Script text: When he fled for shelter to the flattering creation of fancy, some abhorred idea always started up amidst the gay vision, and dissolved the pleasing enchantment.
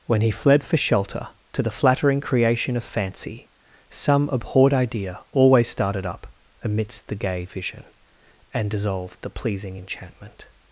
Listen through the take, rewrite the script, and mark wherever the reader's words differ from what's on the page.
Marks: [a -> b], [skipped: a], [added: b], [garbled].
When he fled for shelter to the flattering creation of fancy, some abhorred idea always started up amidst the gay vision, and dissolved the pleasing enchantment.